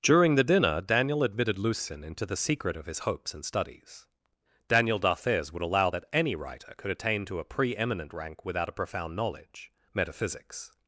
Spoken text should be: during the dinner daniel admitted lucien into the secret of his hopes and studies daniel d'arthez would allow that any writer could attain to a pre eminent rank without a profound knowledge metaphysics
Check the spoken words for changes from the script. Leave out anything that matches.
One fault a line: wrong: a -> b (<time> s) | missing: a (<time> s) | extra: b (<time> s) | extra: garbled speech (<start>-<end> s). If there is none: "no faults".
no faults